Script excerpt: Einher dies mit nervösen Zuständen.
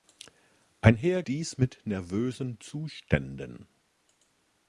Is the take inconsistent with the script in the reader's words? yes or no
no